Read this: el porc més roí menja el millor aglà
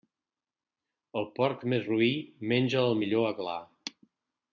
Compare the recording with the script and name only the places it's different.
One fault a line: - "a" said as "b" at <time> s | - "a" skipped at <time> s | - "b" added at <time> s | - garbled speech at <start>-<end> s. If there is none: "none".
none